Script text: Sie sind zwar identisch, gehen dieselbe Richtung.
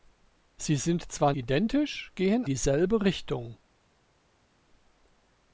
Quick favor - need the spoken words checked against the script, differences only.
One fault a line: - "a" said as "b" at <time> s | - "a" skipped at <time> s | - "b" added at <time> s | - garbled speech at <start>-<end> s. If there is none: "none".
none